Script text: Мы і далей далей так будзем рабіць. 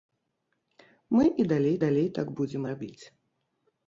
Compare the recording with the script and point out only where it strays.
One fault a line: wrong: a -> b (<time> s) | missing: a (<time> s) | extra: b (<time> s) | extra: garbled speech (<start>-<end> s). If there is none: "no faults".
no faults